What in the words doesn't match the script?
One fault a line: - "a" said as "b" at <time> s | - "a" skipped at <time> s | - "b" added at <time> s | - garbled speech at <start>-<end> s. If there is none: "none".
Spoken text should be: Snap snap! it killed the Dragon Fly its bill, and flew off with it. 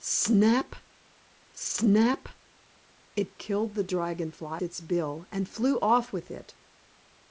none